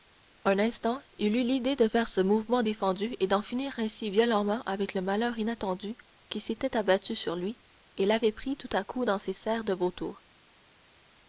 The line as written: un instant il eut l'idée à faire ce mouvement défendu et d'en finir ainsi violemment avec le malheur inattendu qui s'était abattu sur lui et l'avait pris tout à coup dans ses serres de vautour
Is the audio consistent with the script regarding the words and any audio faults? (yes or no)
no